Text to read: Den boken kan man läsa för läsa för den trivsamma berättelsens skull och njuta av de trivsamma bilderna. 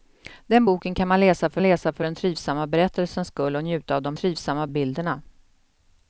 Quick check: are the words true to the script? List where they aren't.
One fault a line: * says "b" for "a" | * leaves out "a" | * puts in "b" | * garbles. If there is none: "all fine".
all fine